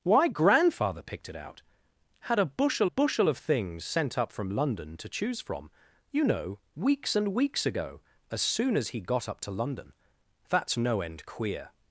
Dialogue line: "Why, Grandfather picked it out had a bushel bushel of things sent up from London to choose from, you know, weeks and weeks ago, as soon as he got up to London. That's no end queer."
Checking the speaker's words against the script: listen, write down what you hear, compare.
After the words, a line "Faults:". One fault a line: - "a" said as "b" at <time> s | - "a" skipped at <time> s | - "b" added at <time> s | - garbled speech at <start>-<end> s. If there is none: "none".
"Why, Grandfather picked it out had a bushel bushel of things sent up from London to choose from, you know, weeks and weeks ago, as soon as he got up to London. That's no end queer."
Faults:
none